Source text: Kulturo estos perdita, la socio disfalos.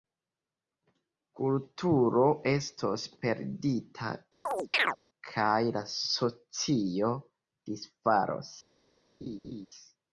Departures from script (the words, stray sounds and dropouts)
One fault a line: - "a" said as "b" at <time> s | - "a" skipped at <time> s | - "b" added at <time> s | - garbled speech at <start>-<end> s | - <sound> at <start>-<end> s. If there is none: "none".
- chirp at 4.5-5.0 s
- "kaj" added at 5.3 s
- laugh at 9.2-9.7 s